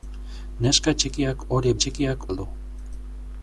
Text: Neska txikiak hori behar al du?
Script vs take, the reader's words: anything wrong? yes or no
yes